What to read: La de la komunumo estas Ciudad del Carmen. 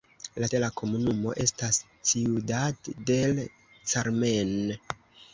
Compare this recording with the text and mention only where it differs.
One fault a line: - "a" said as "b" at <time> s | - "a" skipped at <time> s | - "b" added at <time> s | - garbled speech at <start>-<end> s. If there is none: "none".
none